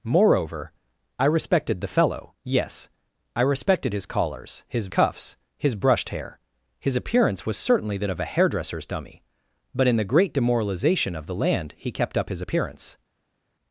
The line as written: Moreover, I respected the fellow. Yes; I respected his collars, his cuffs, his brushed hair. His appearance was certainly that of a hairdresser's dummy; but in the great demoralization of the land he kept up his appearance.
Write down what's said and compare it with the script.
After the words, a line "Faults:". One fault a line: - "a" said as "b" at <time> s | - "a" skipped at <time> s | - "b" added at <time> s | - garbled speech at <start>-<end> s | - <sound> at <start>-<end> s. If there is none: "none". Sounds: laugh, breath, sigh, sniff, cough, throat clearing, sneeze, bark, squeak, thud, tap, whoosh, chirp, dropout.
Moreover, I respected the fellow. Yes; I respected his collars, his cuffs, his brushed hair. His appearance was certainly that of a hairdresser's dummy; but in the great demoralization of the land he kept up his appearance.
Faults:
none